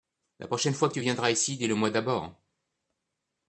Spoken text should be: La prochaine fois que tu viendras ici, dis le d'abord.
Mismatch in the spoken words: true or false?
true